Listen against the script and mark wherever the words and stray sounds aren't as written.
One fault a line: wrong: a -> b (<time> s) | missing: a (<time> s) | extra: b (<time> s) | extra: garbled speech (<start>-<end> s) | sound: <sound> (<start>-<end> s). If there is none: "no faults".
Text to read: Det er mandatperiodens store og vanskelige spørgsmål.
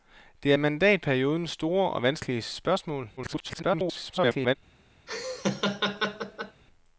extra: garbled speech (3.2-4.6 s)
sound: laugh (5.1-6.6 s)